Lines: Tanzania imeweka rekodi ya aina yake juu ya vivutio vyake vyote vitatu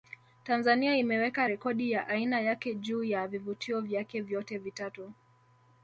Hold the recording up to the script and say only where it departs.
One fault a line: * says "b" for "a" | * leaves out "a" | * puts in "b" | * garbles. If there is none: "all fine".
all fine